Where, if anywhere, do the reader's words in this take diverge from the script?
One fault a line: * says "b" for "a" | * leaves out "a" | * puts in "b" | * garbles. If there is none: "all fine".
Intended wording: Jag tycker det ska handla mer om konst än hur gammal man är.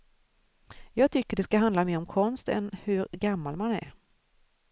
all fine